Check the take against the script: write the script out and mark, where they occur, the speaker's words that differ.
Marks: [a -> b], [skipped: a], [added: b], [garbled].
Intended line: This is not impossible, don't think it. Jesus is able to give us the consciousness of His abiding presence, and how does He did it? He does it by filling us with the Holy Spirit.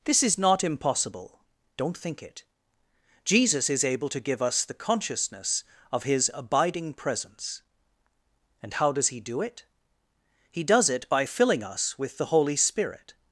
This is not impossible, don't think it. Jesus is able to give us the consciousness of His abiding presence, and how does He [did -> do] it? He does it by filling us with the Holy Spirit.